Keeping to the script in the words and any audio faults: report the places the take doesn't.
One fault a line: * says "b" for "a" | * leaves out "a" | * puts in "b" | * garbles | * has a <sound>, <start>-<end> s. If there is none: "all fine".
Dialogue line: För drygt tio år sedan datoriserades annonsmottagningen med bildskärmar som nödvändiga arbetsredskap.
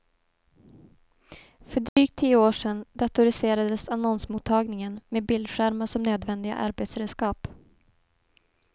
* has a dropout, 1.9-2.0 s